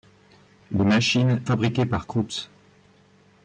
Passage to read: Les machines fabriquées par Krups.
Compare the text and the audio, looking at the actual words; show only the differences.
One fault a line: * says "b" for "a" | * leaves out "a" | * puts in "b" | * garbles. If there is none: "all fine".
all fine